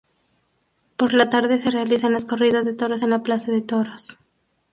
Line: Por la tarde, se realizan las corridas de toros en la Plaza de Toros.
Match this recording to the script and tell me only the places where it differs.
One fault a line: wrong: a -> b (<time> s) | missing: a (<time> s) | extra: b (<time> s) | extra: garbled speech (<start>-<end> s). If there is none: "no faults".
no faults